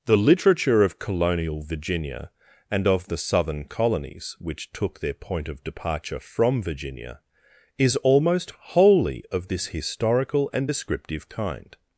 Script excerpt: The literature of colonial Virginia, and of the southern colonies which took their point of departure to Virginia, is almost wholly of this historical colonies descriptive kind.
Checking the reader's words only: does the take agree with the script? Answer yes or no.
no